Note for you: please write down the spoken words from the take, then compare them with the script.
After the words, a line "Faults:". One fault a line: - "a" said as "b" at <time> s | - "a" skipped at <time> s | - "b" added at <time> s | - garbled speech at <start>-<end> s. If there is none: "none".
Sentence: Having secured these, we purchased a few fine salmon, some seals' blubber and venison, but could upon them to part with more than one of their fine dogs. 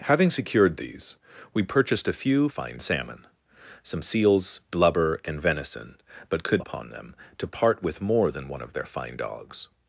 Having secured these, we purchased a few fine salmon, some seals' blubber and venison, but could upon them to part with more than one of their fine dogs.
Faults:
none